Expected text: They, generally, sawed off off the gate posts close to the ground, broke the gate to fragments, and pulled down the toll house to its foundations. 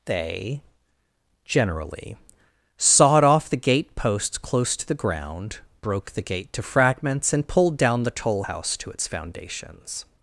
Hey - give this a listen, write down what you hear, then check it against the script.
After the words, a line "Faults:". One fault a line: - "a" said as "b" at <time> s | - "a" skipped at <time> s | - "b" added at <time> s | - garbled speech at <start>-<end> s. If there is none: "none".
They, generally, sawed off the gate posts close to the ground, broke the gate to fragments, and pulled down the toll house to its foundations.
Faults:
- "off" skipped at 3.5 s